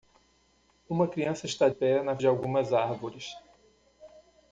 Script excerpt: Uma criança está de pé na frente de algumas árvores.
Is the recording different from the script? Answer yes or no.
yes